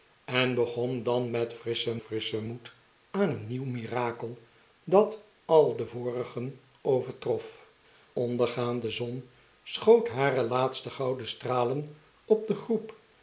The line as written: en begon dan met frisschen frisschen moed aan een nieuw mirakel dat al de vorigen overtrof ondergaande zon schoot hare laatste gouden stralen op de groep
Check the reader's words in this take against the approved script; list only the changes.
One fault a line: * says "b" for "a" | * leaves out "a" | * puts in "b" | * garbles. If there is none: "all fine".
all fine